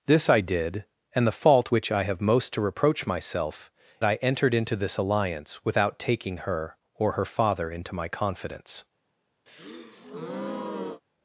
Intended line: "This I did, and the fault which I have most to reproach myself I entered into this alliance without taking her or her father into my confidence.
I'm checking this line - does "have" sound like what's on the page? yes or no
yes